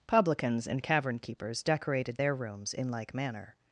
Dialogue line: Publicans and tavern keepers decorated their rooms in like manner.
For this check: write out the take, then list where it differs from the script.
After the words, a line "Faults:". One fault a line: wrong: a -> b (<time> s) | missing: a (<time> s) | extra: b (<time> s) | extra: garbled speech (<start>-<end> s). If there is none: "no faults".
Publicans and cavern keepers decorated their rooms in like manner.
Faults:
wrong: tavern -> cavern (0.8 s)